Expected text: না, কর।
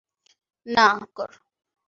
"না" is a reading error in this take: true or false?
false